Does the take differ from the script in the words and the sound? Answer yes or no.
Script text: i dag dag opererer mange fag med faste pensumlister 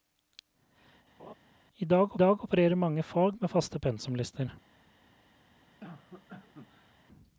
yes